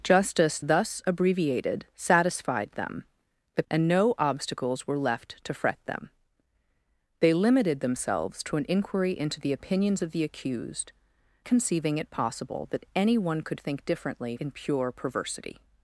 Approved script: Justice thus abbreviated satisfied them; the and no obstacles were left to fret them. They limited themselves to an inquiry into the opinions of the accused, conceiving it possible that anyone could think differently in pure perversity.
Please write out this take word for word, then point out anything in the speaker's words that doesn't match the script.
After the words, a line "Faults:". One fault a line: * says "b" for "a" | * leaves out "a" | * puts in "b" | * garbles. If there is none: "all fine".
Justice thus abbreviated satisfied them; the and no obstacles were left to fret them. They limited themselves to an inquiry into the opinions of the accused, conceiving it possible that anyone could think differently in pure perversity.
Faults:
all fine